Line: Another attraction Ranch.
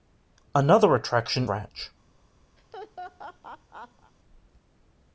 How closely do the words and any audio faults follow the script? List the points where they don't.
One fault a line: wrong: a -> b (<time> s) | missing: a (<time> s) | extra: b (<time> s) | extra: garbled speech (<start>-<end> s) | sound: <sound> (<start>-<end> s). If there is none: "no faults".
sound: laugh (2.6-4.1 s)